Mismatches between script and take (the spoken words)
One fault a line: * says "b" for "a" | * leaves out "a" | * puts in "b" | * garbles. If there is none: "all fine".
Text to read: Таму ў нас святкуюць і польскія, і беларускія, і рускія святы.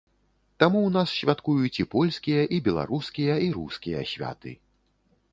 all fine